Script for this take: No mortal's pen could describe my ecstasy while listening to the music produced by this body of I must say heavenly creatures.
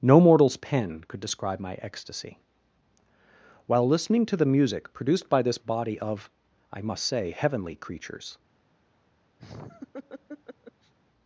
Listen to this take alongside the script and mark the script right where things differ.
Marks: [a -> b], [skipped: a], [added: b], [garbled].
No mortal's pen could describe my ecstasy while listening to the music produced by this body of I must say heavenly creatures.